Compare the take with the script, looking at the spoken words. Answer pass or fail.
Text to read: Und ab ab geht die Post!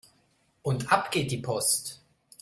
fail